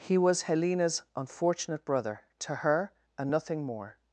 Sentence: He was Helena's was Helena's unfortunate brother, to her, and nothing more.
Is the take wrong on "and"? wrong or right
right